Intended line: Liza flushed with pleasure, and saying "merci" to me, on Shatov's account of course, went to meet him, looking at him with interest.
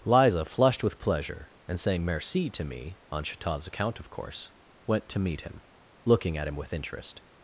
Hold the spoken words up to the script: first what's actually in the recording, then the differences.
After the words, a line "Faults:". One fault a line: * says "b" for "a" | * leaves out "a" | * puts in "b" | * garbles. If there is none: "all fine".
Liza flushed with pleasure, and saying "merci" to me, on Shatov's account of course, went to meet him, looking at him with interest.
Faults:
all fine